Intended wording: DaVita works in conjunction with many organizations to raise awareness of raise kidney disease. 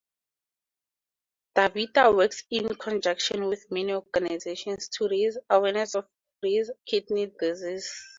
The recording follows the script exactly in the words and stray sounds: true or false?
true